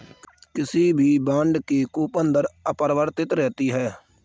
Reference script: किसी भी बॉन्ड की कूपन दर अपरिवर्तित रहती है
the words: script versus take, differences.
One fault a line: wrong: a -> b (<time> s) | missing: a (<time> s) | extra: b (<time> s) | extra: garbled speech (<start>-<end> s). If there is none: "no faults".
no faults